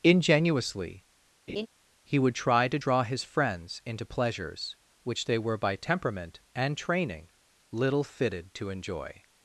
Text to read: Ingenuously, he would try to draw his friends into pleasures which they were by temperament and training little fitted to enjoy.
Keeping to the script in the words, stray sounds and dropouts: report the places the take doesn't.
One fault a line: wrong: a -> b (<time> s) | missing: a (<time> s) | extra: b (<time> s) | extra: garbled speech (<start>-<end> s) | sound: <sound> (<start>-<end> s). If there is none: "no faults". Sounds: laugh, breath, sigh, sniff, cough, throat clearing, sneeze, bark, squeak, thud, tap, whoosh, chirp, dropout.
sound: laugh (1.5-1.7 s)